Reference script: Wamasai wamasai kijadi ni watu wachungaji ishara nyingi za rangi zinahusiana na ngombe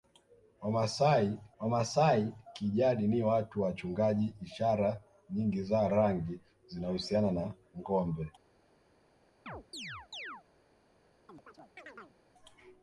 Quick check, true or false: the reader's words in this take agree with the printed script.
true